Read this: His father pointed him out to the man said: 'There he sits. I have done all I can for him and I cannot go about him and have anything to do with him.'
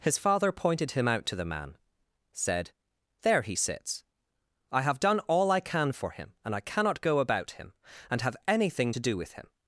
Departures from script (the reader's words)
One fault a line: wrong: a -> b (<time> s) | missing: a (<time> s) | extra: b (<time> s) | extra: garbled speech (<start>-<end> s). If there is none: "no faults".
no faults